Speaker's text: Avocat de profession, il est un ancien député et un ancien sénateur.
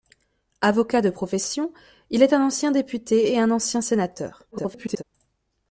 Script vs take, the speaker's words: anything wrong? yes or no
yes